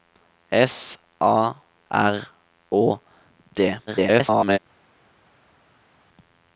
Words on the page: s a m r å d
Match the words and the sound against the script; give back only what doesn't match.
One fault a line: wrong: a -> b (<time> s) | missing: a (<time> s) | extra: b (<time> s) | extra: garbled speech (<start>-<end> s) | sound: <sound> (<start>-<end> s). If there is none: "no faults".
missing: m (1.5 s)
extra: garbled speech (3.9-4.6 s)